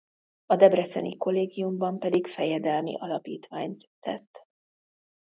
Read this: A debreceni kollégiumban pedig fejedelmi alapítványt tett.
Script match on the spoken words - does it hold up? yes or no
yes